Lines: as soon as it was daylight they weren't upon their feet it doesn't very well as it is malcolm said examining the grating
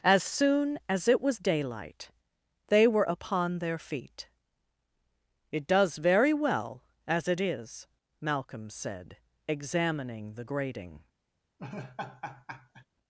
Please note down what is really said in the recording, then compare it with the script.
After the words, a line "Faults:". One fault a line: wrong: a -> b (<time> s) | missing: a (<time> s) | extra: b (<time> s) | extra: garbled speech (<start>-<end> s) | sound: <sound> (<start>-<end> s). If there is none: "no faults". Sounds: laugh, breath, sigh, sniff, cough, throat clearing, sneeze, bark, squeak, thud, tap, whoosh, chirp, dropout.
as soon as it was daylight they were upon their feet it does very well as it is malcolm said examining the grating
Faults:
wrong: weren't -> were (2.9 s)
wrong: doesn't -> does (5.7 s)
sound: laugh (11.6-12.9 s)